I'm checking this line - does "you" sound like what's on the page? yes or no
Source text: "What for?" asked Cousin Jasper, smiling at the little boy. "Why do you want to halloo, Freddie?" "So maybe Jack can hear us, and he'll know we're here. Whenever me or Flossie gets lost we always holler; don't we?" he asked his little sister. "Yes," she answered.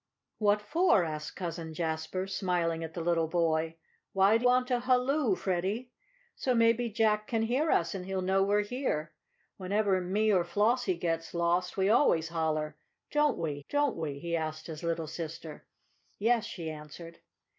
no